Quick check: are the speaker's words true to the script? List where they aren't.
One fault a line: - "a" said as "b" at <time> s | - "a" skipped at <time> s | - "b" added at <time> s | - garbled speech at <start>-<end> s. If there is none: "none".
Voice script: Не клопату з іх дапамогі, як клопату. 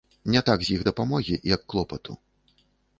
- "клопату" said as "так" at 0.5 s